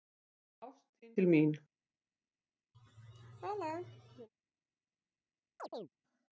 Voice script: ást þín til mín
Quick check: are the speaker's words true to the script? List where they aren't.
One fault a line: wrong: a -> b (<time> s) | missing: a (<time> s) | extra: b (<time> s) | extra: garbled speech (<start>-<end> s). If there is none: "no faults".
no faults